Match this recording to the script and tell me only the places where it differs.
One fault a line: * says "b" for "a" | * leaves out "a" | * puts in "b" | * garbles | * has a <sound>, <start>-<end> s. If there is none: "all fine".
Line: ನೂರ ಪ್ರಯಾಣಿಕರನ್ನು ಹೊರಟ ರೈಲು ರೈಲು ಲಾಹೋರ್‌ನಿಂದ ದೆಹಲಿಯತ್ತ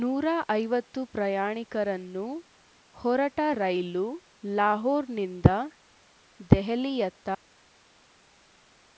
* puts in "ಐವತ್ತು"
* leaves out "ರೈಲು"